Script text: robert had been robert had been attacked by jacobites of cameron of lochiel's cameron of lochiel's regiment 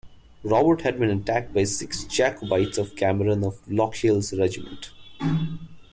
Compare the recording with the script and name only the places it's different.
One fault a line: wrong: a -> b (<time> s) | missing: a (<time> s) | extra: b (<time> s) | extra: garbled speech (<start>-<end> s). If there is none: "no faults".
missing: robert had been (1.1 s)
extra: six (1.6 s)
missing: cameron of lochiel's (4.3 s)